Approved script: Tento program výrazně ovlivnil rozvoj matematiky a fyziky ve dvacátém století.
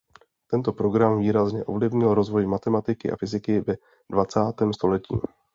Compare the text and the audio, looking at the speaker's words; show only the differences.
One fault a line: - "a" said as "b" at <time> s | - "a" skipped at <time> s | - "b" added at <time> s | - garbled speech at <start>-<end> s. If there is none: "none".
none